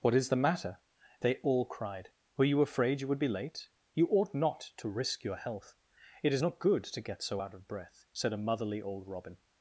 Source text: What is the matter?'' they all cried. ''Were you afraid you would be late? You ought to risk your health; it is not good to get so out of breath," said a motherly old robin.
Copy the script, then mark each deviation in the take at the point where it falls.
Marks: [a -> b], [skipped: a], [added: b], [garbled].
What is the matter?'' they all cried. ''Were you afraid you would be late? You ought [added: not] to risk your health; it is not good to get so out of breath," said a motherly old robin.